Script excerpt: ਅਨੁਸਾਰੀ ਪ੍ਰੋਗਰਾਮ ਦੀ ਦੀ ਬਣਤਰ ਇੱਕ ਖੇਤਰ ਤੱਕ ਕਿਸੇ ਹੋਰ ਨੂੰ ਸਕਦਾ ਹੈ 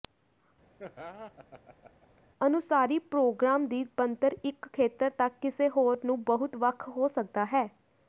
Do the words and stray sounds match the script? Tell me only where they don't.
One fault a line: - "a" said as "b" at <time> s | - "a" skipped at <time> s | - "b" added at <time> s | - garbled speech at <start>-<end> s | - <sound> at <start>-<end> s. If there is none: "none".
- laugh at 0.8-2.2 s
- "ਦੀ" skipped at 3.8 s
- "ਬਹੁਤ ਵੱਖ ਹੋ" added at 6.2 s